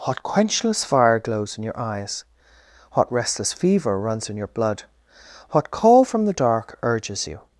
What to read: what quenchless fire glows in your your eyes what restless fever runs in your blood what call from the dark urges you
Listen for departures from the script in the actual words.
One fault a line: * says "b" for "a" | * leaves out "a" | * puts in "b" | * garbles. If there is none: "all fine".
* leaves out "your"